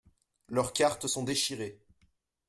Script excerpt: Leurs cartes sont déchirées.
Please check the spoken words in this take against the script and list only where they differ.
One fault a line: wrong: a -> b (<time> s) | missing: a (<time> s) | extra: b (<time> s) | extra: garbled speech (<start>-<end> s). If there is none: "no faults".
no faults